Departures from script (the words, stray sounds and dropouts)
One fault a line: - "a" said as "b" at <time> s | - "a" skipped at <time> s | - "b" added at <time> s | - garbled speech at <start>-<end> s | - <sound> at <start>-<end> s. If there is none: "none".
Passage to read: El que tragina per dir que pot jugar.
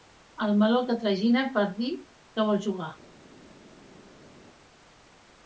- "meló" added at 0.6 s
- "pot" said as "vol" at 2.5 s